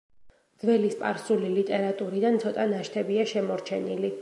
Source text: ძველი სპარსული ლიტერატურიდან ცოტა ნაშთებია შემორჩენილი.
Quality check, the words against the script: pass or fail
pass